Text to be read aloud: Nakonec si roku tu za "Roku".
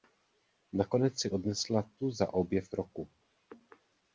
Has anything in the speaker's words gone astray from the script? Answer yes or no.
yes